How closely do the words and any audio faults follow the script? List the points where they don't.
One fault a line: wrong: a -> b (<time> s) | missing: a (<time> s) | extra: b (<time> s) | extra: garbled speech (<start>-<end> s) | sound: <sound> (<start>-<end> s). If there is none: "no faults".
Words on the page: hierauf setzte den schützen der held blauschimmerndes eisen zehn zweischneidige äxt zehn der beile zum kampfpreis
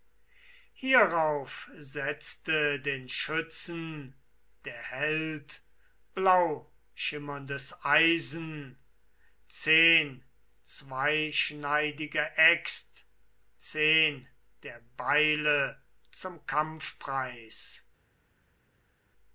no faults